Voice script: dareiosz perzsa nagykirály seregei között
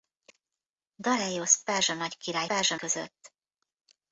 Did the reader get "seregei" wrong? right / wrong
wrong